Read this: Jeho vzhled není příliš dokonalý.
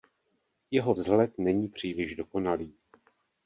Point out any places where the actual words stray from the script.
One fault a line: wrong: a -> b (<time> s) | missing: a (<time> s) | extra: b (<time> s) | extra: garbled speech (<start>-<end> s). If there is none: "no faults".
no faults